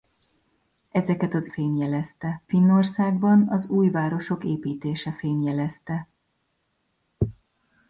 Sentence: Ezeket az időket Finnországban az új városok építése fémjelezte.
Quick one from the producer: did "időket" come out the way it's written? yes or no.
no